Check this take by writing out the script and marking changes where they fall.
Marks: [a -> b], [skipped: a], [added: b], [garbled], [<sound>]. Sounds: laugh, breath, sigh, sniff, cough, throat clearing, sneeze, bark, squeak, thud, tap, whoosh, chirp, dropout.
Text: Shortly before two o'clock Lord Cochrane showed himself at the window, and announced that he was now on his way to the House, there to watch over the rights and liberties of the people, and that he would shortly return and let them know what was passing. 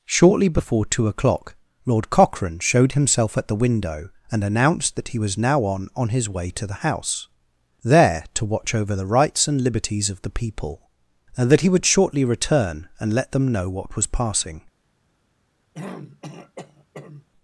Shortly before two o'clock Lord Cochrane showed himself at the window, and announced that he was now on [added: on] his way to the House, there to watch over the rights and liberties of the people, and that he would shortly return and let them know what was passing. [throat clearing]